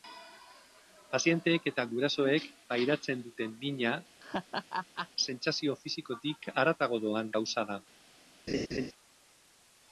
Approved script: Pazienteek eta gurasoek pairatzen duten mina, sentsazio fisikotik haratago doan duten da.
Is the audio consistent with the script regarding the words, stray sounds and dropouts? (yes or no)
no